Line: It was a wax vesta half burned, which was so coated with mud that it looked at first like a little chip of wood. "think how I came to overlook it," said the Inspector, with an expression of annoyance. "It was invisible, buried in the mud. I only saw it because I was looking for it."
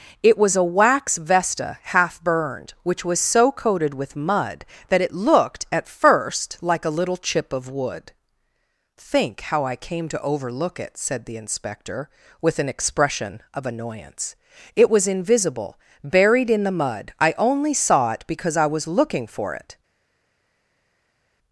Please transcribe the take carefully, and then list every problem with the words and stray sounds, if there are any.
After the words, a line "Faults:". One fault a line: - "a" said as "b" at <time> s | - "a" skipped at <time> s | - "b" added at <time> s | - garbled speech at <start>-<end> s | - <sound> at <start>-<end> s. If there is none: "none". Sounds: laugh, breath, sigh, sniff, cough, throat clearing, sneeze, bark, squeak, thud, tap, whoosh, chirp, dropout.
It was a wax vesta half burned, which was so coated with mud that it looked at first like a little chip of wood. "think how I came to overlook it," said the Inspector, with an expression of annoyance. "It was invisible, buried in the mud. I only saw it because I was looking for it."
Faults:
none